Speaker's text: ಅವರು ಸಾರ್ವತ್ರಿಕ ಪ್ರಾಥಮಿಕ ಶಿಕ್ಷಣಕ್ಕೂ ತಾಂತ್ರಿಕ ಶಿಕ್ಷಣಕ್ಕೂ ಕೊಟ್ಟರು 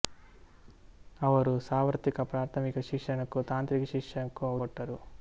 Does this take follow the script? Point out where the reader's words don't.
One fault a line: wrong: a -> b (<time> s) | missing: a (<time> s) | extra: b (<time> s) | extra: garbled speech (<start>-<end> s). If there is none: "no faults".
no faults